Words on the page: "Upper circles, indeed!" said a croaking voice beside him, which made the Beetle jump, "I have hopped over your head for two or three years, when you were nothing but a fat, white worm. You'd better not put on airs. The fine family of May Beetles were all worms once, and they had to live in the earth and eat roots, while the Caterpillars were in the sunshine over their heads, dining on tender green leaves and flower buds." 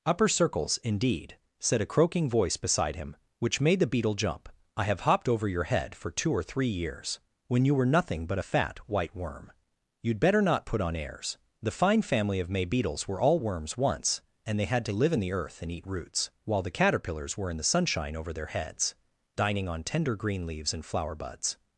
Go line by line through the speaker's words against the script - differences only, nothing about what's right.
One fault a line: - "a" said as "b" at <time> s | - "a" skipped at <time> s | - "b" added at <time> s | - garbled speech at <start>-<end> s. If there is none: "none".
none